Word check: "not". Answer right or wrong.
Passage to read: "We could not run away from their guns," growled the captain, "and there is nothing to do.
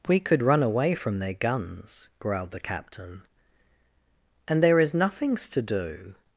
wrong